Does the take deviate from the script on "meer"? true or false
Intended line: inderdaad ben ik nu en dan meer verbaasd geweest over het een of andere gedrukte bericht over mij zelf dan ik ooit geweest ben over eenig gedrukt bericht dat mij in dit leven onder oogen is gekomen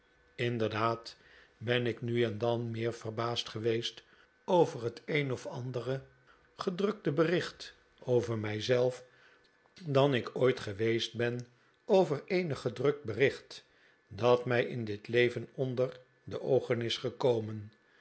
false